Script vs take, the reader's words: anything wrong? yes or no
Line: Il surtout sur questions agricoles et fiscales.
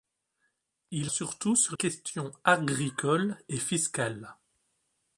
no